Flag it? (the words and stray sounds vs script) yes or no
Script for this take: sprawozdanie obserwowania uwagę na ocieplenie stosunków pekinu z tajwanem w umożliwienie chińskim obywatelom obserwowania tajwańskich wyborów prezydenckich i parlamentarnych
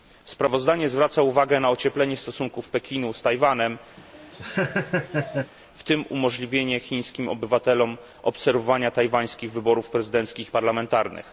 yes